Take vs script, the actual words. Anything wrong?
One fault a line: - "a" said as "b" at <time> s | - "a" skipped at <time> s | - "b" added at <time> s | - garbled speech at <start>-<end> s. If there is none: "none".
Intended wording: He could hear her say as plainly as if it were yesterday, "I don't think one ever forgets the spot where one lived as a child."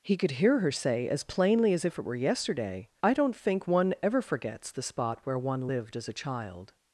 none